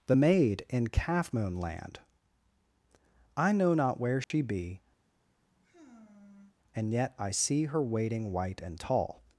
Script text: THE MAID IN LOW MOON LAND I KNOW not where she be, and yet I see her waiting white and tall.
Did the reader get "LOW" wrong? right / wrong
wrong